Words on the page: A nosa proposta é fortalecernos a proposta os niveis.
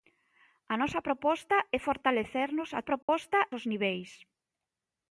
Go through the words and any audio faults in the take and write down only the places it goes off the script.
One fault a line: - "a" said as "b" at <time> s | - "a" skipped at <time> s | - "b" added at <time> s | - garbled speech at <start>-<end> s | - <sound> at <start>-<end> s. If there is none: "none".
- dropout at 3.0-3.1 s